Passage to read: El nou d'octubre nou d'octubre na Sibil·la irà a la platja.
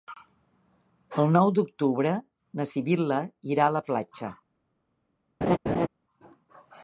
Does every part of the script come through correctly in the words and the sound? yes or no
no